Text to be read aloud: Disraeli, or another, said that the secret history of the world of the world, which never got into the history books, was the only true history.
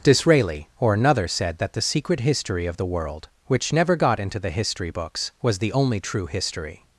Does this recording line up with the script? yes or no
no